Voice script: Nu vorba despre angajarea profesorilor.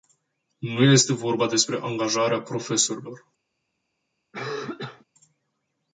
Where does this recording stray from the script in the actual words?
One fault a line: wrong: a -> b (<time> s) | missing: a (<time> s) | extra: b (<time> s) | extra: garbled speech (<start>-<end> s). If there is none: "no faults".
extra: este (0.8 s)